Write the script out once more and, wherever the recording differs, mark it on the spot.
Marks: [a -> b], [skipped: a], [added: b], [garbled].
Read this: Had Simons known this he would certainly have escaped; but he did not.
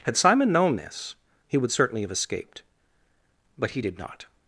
Had [Simons -> Simon] known this he would certainly have escaped; but he did not.